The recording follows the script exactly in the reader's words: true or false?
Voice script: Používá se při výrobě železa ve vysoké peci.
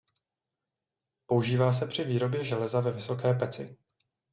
true